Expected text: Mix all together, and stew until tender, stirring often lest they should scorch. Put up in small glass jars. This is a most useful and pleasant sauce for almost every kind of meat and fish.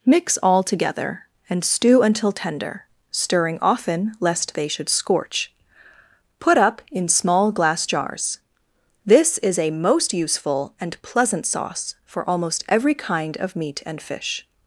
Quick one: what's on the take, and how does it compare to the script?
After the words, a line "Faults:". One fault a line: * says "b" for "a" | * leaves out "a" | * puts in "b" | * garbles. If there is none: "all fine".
Mix all together, and stew until tender, stirring often lest they should scorch. Put up in small glass jars. This is a most useful and pleasant sauce for almost every kind of meat and fish.
Faults:
all fine